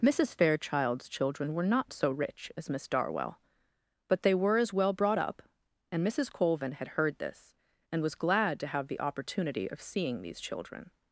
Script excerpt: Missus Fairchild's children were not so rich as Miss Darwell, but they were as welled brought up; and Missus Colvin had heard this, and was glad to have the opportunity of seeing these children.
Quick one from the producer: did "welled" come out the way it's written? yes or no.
no